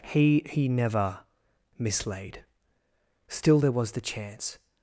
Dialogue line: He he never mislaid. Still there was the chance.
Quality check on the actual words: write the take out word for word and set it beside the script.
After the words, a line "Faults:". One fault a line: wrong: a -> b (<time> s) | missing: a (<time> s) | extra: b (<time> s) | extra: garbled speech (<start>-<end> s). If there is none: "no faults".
He he never mislaid. Still there was the chance.
Faults:
no faults